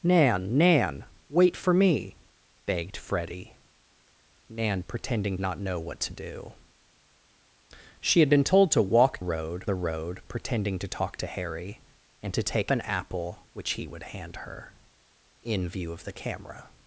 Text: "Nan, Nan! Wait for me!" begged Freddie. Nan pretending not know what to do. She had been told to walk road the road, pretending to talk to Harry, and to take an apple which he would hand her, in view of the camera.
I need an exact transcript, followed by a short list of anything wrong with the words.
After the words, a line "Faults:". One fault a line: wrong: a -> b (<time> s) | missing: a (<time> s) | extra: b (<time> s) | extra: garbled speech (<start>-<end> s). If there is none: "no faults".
"Nan, Nan! Wait for me!" begged Freddie. Nan pretending not know what to do. She had been told to walk road the road, pretending to talk to Harry, and to take an apple which he would hand her, in view of the camera.
Faults:
no faults